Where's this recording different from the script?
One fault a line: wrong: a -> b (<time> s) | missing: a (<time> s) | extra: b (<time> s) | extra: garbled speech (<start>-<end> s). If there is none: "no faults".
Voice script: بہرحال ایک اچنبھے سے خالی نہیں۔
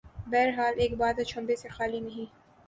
extra: بات (1.0 s)